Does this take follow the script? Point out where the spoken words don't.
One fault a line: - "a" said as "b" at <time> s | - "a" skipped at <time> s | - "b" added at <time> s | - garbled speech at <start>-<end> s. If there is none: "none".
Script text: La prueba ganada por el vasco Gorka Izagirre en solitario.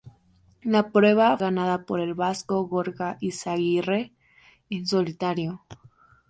none